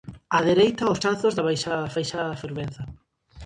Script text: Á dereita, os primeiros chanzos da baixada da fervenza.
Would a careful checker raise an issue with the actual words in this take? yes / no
yes